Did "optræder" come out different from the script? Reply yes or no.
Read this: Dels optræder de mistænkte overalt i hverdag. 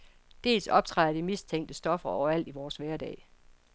no